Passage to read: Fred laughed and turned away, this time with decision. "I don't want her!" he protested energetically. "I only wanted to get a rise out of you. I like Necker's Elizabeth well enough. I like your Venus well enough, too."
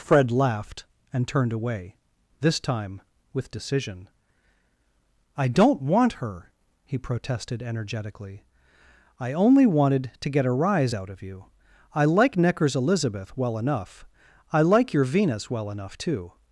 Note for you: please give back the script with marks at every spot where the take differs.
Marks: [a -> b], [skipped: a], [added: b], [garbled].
Fred laughed and turned away, this time with decision. "I don't want her!" he protested energetically. "I only wanted to get a rise out of you. I like Necker's Elizabeth well enough. I like your Venus well enough, too."